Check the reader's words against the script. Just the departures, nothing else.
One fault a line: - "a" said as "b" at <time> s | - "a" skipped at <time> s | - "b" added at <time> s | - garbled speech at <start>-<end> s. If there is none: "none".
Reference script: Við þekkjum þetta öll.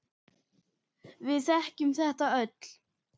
none